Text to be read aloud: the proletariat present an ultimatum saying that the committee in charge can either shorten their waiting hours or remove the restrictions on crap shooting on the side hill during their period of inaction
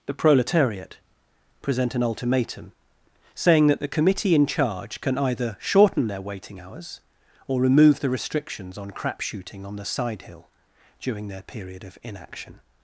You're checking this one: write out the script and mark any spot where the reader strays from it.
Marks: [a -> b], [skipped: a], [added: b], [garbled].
the proletariat present an ultimatum saying that the committee in charge can either shorten their waiting hours or remove the restrictions on crap shooting on the side hill during their period of inaction